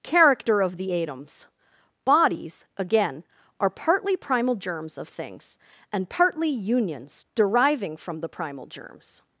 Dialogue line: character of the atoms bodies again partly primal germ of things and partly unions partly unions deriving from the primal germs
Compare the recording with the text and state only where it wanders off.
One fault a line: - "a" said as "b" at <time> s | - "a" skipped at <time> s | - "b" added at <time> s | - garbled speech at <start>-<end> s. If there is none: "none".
- "are" added at 3.6 s
- "germ" said as "germs" at 4.5 s
- "partly unions" skipped at 7.3 s